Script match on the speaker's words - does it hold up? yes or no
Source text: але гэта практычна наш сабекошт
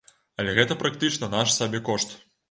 yes